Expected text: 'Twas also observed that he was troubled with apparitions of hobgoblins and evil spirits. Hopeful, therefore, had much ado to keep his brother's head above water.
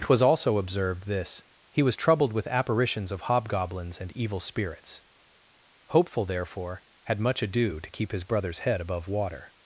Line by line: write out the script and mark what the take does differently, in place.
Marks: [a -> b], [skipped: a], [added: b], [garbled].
'Twas also observed [that -> this] he was troubled with apparitions of hobgoblins and evil spirits. Hopeful, therefore, had much ado to keep his brother's head above water.